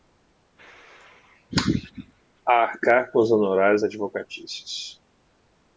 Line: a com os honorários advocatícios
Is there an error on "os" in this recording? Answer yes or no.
no